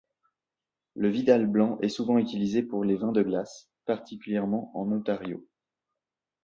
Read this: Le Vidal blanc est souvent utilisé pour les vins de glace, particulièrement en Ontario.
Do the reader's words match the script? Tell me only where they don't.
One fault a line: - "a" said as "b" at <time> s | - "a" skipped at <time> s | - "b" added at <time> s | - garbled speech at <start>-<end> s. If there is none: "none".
none